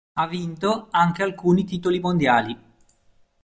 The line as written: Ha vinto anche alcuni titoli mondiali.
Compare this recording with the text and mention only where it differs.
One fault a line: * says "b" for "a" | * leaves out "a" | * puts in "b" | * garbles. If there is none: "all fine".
all fine